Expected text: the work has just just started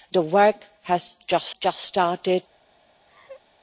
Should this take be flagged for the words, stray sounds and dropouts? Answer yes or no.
yes